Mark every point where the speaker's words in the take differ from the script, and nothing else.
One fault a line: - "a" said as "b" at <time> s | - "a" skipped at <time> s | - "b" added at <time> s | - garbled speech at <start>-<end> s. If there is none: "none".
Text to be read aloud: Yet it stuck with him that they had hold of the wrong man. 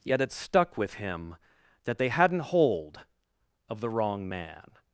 - "had" said as "hadn't" at 2.1 s